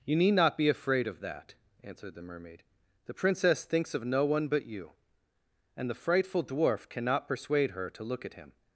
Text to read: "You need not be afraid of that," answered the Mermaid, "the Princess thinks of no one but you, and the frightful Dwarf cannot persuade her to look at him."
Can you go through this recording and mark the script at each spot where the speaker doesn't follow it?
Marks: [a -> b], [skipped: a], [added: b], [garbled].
"You need not be afraid of that," answered the Mermaid, "the Princess thinks of no one but you, and the frightful Dwarf cannot persuade her to look at him."